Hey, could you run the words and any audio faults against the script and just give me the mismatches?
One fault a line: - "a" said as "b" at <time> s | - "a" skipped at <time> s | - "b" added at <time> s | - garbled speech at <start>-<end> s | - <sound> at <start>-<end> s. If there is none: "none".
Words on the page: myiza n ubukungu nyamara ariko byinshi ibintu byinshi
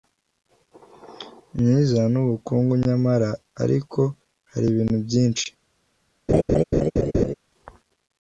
- "byinshi" said as "hari" at 4.5 s
- laugh at 6.3-7.3 s